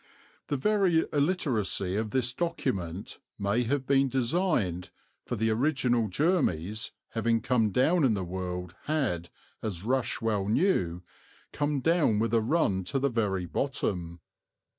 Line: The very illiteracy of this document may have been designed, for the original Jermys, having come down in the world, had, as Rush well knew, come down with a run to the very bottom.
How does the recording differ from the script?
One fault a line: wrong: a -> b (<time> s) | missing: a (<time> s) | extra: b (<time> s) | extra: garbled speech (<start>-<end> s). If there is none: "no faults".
no faults